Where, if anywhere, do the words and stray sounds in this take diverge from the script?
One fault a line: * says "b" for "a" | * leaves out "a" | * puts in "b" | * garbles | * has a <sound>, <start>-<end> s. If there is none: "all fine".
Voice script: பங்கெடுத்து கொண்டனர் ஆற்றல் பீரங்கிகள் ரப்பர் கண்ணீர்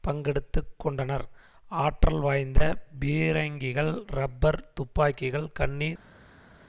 * puts in "வாய்ந்த"
* puts in "துப்பாக்கிகள்"